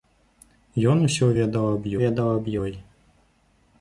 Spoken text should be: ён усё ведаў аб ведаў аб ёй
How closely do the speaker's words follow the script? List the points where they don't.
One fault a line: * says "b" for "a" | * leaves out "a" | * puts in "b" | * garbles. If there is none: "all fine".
all fine